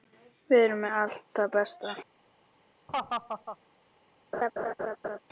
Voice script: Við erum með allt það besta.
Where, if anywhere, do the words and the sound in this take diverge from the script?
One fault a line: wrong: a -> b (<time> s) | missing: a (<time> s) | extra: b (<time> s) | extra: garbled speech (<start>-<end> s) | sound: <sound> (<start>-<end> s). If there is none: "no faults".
sound: laugh (2.9-3.6 s)
sound: laugh (4.3-5.2 s)